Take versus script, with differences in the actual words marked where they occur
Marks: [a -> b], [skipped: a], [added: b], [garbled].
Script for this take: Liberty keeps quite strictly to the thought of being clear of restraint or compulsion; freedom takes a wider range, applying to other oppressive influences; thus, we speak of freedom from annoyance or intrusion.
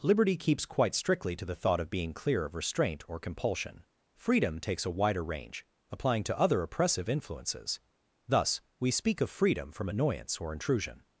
Liberty keeps quite strictly to the thought of being clear of restraint or compulsion; freedom takes a wider range, applying to other oppressive influences; thus, we speak of freedom from annoyance or intrusion.